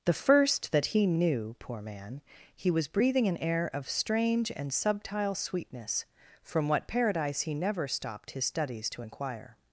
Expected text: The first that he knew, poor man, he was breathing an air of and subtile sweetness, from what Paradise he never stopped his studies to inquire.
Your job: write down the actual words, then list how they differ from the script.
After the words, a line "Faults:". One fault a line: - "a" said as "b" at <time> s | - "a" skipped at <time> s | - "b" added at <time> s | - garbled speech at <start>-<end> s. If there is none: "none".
The first that he knew, poor man, he was breathing an air of strange and subtile sweetness, from what Paradise he never stopped his studies to inquire.
Faults:
- "strange" added at 3.9 s